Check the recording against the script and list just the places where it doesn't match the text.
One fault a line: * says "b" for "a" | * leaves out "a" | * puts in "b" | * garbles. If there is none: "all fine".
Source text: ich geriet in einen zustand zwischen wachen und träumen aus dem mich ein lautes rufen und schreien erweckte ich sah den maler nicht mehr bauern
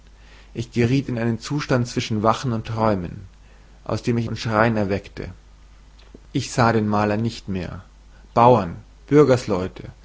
* leaves out "ein lautes rufen"